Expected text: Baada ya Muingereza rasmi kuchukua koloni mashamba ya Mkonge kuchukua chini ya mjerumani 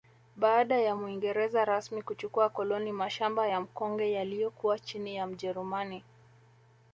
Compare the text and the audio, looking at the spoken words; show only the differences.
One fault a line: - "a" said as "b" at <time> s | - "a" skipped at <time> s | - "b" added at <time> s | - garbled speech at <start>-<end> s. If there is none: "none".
- "kuchukua" said as "yaliyokuwa" at 4.1 s